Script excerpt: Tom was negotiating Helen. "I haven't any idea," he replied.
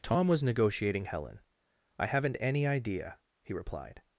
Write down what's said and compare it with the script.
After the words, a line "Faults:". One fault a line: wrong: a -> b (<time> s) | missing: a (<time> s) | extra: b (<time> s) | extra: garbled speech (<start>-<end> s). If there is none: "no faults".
Tom was negotiating Helen. "I haven't any idea," he replied.
Faults:
no faults